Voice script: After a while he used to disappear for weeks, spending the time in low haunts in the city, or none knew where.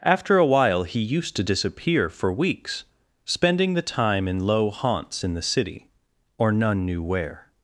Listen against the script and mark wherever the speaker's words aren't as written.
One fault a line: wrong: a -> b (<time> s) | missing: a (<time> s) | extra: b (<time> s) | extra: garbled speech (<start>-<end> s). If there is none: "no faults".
no faults